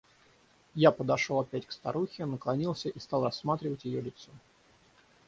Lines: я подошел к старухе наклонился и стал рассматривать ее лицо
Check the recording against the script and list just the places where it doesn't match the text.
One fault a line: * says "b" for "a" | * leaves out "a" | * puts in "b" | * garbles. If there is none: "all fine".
* puts in "опять"